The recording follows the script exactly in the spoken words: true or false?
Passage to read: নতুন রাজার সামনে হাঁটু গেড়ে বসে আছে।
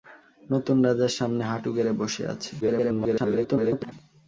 false